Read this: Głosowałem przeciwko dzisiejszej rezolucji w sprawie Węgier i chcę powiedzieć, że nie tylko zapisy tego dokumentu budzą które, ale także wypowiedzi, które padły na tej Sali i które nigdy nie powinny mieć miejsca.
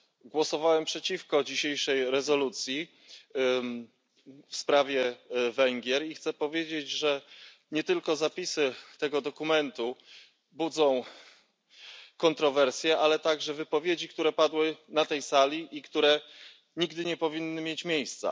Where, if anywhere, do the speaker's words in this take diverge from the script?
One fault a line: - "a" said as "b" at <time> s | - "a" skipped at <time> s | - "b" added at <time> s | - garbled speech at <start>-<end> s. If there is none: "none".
- "które" said as "kontrowersje" at 12.2 s